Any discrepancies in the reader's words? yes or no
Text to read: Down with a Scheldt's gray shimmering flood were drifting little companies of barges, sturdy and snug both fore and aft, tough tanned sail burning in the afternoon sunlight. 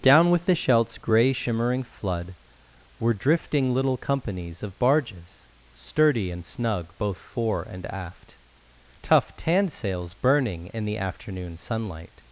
yes